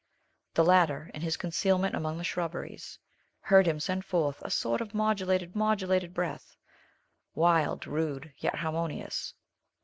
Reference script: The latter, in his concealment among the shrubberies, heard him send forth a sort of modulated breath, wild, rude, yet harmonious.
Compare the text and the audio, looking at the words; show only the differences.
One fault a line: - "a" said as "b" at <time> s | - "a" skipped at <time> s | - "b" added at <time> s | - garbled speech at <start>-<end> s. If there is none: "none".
- "modulated" added at 5.6 s